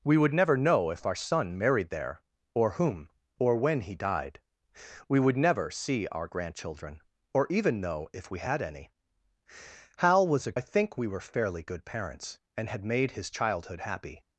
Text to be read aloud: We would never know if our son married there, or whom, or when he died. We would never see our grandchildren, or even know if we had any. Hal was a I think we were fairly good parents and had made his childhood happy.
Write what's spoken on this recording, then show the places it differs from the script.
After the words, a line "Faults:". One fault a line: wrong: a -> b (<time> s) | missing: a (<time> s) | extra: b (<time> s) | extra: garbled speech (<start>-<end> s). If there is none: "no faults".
We would never know if our son married there, or whom, or when he died. We would never see our grandchildren, or even know if we had any. Hal was a I think we were fairly good parents and had made his childhood happy.
Faults:
no faults